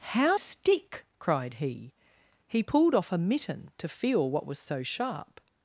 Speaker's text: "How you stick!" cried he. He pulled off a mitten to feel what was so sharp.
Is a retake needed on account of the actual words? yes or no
yes